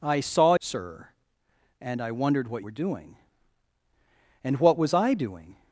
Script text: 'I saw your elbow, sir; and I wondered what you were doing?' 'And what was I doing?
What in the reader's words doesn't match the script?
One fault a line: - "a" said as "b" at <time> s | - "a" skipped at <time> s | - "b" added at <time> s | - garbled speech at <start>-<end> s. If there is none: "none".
- "your elbow" skipped at 0.6 s
- "you" skipped at 2.6 s